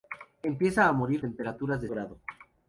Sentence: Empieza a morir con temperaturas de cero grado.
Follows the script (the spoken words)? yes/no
no